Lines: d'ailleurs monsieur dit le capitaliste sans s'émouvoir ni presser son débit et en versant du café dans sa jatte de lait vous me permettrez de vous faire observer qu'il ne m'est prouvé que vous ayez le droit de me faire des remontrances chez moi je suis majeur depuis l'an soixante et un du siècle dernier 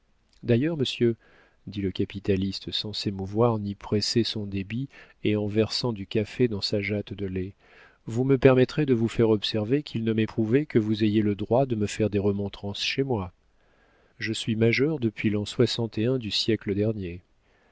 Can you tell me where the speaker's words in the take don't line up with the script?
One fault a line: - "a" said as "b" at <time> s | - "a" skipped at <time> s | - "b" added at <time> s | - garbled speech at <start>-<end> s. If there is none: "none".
none